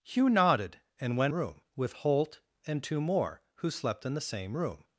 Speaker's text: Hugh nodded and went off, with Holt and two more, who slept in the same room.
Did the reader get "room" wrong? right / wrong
right